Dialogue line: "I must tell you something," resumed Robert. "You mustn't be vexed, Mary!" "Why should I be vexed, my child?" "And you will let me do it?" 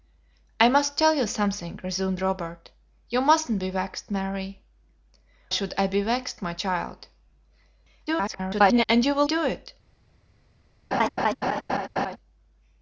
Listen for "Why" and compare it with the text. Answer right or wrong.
wrong